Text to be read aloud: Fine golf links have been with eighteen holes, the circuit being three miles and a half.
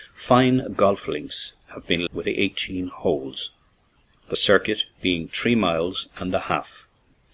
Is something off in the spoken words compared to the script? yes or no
no